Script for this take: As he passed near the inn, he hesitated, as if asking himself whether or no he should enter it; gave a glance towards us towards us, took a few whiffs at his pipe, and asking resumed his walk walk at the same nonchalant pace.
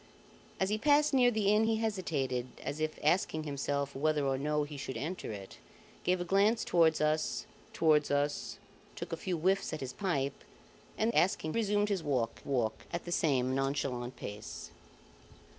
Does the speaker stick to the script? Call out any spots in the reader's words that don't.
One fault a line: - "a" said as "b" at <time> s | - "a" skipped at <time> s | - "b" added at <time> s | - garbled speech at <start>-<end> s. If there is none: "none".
none